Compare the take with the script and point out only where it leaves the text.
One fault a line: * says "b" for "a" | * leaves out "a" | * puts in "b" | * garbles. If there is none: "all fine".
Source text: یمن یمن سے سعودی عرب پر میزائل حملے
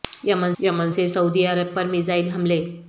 all fine